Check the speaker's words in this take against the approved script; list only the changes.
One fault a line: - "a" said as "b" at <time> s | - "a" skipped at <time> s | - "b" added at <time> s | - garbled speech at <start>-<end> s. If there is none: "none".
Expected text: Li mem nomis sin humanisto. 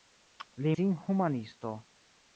- "mem nomis" skipped at 0.7 s